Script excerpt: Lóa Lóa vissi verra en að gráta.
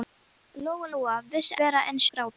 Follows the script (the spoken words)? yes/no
yes